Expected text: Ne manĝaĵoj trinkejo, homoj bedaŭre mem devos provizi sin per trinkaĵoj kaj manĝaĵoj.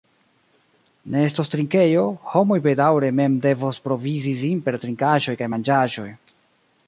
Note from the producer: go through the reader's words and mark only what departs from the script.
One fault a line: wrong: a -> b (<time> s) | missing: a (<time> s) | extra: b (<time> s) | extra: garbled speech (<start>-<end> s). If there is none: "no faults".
wrong: manĝaĵoj -> estos (1.2 s)